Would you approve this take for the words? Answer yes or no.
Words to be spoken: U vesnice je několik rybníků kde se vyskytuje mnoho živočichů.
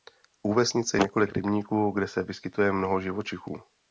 yes